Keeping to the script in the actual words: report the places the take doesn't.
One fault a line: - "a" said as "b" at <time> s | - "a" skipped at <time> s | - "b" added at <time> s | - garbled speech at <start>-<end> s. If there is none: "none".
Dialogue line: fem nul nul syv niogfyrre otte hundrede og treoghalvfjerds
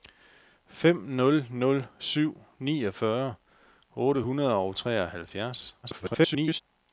- garbled speech at 5.8-6.6 s